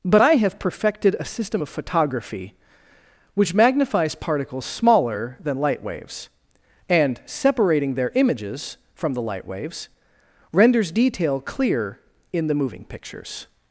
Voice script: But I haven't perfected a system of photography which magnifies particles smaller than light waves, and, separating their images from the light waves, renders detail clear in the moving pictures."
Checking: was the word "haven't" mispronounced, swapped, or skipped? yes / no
yes